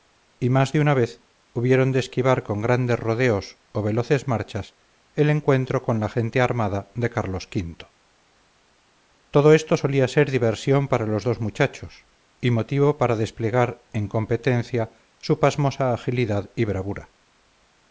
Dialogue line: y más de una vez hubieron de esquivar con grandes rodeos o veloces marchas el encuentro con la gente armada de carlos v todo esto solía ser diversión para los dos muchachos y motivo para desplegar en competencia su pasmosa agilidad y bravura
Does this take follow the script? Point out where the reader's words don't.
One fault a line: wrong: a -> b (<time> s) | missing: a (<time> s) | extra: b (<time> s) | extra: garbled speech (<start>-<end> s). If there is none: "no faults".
no faults